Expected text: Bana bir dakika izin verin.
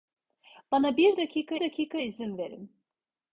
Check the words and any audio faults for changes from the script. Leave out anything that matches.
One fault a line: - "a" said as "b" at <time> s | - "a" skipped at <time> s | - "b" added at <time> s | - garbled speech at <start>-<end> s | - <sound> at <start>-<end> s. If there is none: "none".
- "dakika" added at 1.6 s